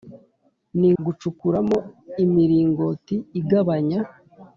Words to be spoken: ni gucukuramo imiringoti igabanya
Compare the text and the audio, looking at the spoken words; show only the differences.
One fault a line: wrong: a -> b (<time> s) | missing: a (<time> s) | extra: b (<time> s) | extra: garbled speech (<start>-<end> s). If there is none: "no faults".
no faults